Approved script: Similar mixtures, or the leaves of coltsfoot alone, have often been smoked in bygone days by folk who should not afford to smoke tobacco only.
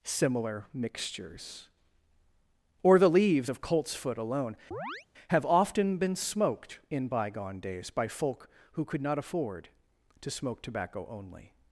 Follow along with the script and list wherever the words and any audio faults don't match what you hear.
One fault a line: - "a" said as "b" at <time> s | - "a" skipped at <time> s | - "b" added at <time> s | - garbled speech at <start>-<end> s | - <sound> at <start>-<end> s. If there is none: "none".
- chirp at 4.7-5.1 s
- "should" said as "could" at 8.8 s